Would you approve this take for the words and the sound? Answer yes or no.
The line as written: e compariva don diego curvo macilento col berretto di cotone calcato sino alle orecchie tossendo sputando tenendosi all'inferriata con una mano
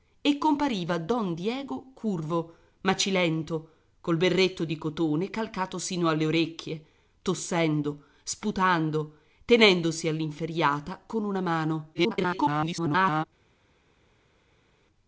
no